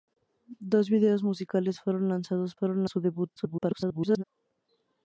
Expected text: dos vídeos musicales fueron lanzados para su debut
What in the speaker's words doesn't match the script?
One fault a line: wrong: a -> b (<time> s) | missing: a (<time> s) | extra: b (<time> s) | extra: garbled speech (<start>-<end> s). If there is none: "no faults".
wrong: para -> fueron (2.5 s)
extra: garbled speech (3.4-4.2 s)